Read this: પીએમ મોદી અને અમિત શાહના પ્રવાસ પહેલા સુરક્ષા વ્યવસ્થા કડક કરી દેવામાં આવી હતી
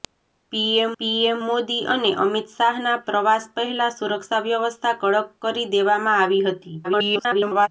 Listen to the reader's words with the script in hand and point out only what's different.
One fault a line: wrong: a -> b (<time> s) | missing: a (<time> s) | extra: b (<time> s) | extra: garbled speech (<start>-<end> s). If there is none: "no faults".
extra: પીએમ (1.0 s)
extra: garbled speech (6.8-7.7 s)